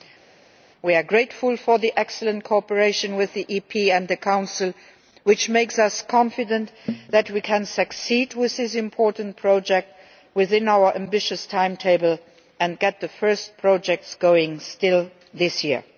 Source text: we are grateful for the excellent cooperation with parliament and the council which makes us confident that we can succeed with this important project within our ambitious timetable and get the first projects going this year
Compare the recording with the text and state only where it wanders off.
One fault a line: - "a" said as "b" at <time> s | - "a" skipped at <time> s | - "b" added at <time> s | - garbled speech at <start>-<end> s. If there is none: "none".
none